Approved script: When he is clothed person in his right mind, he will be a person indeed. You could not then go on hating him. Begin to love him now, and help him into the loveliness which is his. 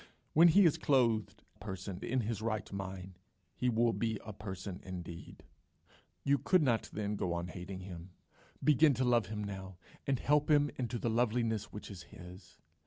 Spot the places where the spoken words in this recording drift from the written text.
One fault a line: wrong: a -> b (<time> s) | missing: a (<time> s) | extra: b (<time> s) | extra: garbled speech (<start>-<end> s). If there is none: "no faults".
no faults